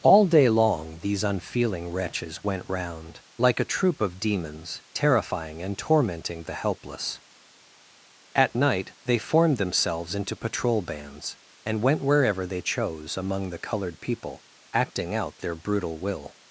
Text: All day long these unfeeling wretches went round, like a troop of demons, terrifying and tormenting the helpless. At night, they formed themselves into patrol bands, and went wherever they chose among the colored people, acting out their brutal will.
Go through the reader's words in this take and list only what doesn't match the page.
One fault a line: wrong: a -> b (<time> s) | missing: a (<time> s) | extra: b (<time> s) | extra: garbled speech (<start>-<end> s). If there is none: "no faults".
no faults